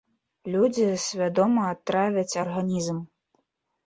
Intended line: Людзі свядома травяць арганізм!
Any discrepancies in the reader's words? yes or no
no